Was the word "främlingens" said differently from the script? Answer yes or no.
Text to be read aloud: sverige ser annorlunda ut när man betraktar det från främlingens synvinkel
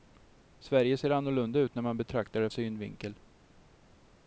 yes